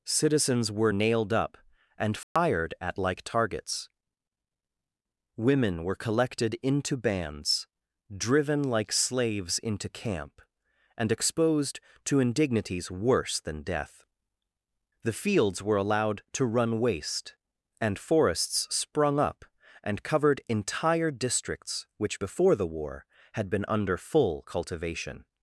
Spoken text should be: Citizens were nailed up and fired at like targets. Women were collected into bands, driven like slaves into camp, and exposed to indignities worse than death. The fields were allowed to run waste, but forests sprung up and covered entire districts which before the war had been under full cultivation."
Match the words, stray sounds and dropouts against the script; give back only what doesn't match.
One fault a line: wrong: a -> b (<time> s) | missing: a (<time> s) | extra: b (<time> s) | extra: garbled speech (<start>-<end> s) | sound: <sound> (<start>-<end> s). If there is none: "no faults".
sound: dropout (2.2-2.4 s)
wrong: but -> and (17.8 s)